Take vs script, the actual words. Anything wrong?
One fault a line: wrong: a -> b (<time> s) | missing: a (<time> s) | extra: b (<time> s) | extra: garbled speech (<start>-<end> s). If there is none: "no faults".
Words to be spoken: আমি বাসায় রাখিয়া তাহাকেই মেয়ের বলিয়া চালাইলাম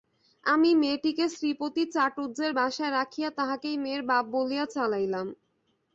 extra: মেয়েটিকে শ্রীপতি চাটুজ্যের (0.8 s)
extra: বাপ (4.1 s)